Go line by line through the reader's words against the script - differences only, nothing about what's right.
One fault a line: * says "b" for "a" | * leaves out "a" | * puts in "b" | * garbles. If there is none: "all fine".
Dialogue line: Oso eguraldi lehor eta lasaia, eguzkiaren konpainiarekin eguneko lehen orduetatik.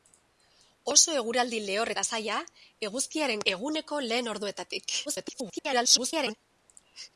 * leaves out "eta"
* leaves out "konpainiarekin"
* garbles